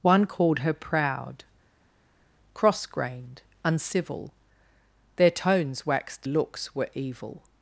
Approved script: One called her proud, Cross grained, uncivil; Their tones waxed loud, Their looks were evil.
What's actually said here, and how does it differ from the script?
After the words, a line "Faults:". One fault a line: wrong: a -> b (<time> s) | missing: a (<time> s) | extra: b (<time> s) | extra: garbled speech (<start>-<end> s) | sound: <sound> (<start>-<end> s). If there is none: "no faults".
One called her proud, Cross grained, uncivil; Their tones waxed looks were evil.
Faults:
missing: loud Their (6.3 s)